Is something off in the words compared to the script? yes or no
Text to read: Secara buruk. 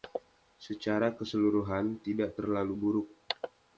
yes